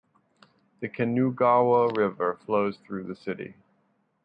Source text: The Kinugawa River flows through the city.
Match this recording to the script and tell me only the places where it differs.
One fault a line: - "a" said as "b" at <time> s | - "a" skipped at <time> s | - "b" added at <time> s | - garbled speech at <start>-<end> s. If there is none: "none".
none